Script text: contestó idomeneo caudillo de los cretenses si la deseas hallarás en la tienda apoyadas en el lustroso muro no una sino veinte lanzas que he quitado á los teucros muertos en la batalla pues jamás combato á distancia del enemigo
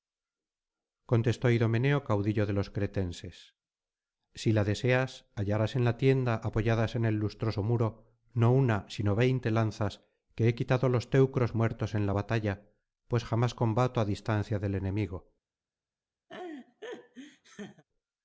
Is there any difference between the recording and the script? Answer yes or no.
no